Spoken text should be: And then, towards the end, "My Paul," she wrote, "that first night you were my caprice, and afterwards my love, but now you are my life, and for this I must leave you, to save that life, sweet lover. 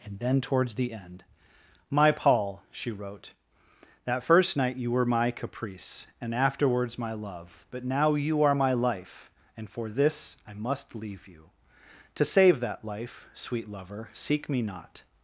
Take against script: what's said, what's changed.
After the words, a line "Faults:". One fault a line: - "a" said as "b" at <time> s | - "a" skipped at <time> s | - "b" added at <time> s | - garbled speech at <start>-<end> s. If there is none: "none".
And then, towards the end, "My Paul," she wrote, "that first night you were my caprice, and afterwards my love, but now you are my life, and for this I must leave you, to save that life, sweet lover. Seek me not
Faults:
- "Seek me not" added at 14.1 s